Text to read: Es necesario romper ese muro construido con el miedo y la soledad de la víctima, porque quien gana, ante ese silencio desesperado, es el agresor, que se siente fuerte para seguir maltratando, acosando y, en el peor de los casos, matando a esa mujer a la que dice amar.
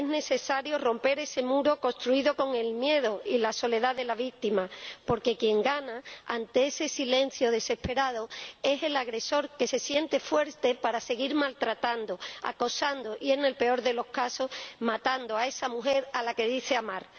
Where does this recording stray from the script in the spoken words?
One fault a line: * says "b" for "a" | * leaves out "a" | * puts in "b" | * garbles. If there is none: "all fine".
all fine